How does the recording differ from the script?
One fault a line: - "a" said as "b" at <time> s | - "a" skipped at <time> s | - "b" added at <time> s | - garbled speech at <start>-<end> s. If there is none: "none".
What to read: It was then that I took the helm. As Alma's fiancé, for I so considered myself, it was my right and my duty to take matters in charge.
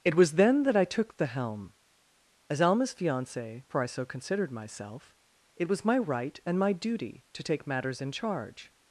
none